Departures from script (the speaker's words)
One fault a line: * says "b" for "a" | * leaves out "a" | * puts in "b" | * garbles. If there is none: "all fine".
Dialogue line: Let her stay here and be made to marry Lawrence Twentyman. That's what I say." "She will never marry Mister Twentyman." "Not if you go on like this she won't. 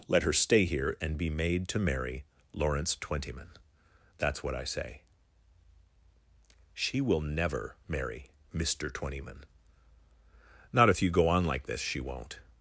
all fine